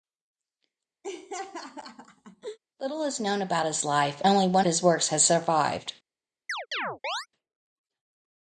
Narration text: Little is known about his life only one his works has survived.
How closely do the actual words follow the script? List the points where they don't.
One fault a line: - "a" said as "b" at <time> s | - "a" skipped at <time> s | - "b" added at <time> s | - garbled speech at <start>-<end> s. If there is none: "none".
none